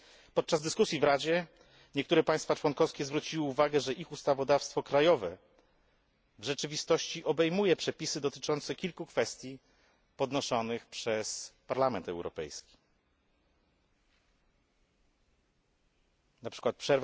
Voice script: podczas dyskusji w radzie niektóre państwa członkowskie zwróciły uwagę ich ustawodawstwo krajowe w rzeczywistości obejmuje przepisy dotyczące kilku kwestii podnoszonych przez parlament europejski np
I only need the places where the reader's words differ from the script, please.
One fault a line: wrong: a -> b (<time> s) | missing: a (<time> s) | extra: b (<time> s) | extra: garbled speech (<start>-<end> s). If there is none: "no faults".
extra: że (3.8 s)